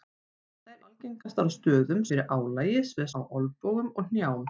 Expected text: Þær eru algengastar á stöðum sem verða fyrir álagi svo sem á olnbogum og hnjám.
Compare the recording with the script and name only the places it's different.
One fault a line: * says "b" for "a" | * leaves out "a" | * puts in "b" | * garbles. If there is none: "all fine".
* leaves out "eru"
* leaves out "sem verða"
* leaves out "sem"